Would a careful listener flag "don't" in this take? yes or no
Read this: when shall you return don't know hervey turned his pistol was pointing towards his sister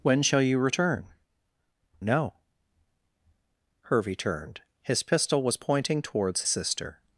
yes